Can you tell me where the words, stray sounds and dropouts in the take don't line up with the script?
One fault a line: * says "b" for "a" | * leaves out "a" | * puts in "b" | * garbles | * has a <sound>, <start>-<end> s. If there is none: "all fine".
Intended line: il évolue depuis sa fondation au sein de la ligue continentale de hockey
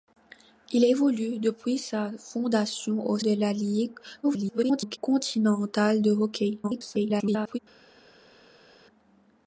* leaves out "sein"
* garbles
* garbles